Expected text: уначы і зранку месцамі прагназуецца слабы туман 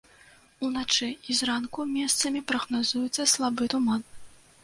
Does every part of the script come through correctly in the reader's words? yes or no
yes